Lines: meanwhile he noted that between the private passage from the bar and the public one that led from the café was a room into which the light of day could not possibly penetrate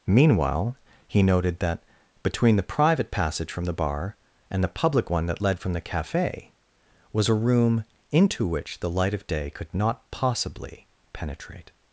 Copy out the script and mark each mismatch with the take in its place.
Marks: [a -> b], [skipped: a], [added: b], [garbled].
meanwhile he noted that between the private passage from the bar and the public one that led from the café was a room into which the light of day could not possibly penetrate